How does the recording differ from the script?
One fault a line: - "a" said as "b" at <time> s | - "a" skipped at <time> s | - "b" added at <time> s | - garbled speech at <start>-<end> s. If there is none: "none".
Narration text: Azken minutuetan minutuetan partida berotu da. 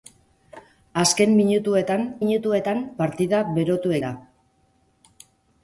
none